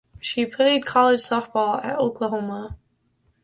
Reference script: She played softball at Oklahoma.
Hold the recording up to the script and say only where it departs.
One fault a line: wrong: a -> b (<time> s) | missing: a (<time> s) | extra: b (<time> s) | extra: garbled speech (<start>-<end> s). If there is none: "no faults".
extra: college (0.8 s)